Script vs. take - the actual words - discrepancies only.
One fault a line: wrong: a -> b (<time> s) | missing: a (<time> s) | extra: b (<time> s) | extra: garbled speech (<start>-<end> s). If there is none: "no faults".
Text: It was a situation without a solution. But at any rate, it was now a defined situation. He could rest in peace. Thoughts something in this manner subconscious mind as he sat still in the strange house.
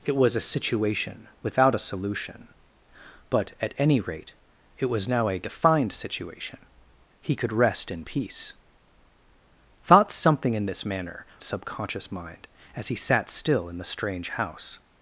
no faults